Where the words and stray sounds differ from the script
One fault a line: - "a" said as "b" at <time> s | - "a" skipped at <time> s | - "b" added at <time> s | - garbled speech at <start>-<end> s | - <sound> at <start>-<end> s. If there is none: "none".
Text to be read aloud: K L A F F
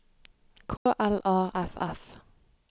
- dropout at 0.8-0.9 s